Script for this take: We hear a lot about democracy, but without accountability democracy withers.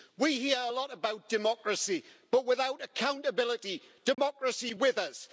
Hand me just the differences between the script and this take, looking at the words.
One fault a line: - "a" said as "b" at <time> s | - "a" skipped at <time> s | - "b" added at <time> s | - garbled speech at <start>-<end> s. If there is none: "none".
none